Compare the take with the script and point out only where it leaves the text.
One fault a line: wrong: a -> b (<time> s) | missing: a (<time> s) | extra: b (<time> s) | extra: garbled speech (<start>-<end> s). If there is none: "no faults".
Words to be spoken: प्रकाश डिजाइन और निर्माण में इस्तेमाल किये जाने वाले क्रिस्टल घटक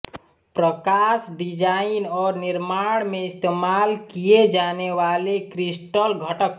no faults